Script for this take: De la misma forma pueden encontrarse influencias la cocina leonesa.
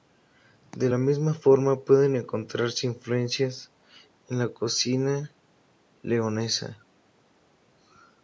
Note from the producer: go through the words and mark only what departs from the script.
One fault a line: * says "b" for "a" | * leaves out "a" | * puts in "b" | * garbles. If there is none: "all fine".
* puts in "en"